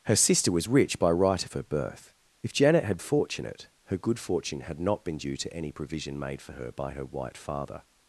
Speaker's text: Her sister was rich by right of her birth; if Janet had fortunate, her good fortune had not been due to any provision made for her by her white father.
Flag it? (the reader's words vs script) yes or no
no